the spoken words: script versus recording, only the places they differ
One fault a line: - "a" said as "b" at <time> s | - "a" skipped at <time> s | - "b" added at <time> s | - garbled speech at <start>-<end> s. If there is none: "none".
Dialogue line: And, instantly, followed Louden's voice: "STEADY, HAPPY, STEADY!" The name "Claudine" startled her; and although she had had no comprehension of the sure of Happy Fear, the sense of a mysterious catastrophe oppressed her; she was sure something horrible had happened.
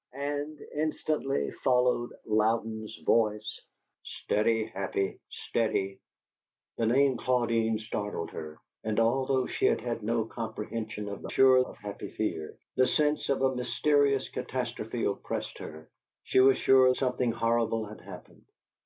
none